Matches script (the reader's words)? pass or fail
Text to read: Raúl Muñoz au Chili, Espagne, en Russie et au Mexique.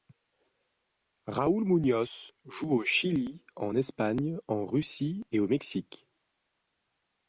fail